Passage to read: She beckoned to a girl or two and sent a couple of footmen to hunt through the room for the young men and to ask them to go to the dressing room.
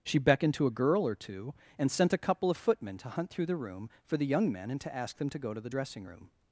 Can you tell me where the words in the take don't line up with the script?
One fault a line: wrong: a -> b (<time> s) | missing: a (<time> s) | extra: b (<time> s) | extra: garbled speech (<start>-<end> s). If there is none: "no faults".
no faults